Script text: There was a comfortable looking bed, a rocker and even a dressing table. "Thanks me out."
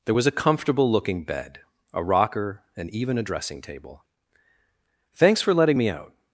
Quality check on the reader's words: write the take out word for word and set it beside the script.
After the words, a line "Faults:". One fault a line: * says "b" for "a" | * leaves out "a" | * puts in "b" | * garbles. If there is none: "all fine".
There was a comfortable looking bed, a rocker and even a dressing table. "Thanks for letting me out."
Faults:
* puts in "for letting"